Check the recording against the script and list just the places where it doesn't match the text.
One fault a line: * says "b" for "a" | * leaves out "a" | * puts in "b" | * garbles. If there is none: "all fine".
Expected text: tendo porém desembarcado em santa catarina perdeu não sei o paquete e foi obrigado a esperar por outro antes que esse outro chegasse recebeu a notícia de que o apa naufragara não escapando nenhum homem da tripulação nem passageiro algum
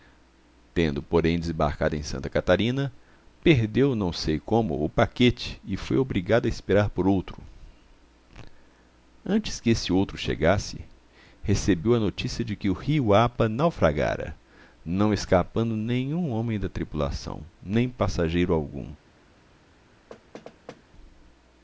* puts in "como"
* puts in "rio"